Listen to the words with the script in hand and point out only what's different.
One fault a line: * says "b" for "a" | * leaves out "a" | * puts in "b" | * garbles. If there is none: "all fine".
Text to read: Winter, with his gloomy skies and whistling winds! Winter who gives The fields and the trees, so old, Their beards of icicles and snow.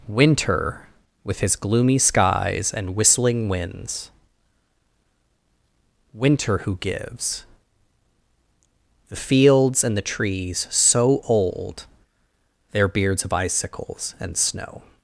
all fine